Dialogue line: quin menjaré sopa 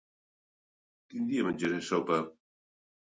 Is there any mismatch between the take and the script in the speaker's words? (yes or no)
yes